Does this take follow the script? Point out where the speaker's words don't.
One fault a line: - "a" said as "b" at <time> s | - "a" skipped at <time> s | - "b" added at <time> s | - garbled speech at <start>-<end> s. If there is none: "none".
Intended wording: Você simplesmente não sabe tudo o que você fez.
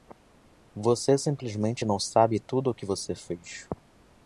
none